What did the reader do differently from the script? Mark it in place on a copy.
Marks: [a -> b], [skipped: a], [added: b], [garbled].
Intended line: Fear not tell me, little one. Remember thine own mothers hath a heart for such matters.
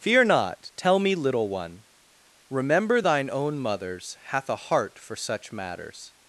Fear not tell me, little one. Remember thine own mothers hath a heart for such matters.